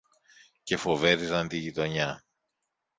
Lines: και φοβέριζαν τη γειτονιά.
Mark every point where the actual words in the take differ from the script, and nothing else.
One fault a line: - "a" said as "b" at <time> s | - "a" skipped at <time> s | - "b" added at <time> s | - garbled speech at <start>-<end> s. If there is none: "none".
none